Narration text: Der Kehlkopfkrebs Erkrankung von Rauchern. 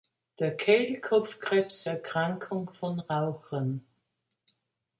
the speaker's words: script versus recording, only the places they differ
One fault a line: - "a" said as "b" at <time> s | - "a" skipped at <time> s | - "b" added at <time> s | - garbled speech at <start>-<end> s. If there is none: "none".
none